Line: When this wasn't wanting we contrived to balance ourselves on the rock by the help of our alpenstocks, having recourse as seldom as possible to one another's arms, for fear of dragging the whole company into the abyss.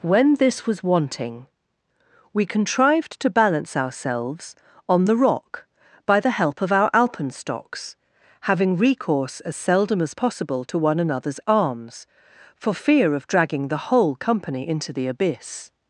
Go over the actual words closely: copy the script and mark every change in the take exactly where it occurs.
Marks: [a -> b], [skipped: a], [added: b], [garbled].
When this [wasn't -> was] wanting we contrived to balance ourselves on the rock by the help of our alpenstocks, having recourse as seldom as possible to one another's arms, for fear of dragging the whole company into the abyss.